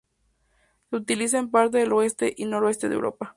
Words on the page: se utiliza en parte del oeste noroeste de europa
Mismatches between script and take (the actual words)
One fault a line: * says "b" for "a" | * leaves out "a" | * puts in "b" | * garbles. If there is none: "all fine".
* puts in "y"